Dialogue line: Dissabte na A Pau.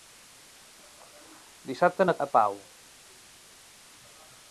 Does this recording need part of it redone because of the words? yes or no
no